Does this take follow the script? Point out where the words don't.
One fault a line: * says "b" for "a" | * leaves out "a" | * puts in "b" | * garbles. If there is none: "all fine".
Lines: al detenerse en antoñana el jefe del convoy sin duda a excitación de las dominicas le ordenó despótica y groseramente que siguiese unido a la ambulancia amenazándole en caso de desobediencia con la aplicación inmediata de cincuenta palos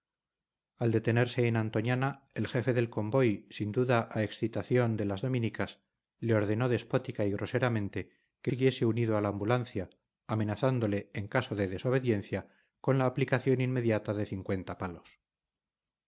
all fine